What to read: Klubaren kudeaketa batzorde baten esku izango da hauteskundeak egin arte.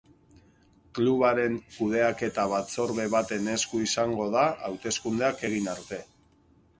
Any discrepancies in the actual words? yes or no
no